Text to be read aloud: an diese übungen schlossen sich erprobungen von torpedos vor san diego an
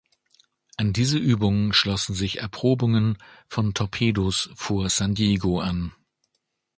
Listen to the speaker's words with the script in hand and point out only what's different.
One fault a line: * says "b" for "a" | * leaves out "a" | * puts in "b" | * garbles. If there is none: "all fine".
all fine